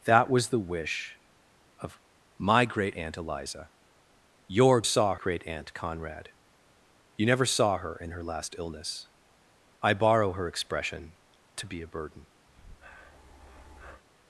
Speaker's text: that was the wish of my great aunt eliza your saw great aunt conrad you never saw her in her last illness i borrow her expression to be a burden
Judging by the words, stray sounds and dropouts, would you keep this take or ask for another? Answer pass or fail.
fail